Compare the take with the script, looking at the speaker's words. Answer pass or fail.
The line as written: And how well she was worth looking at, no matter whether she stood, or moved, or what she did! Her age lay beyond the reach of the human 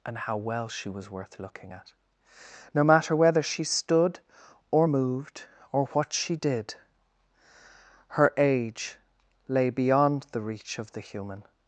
pass